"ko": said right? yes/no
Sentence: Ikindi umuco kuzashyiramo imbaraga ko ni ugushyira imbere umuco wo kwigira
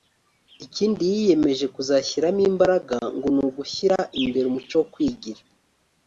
no